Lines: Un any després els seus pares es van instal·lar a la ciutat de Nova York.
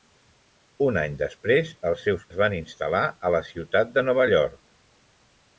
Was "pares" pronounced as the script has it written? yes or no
no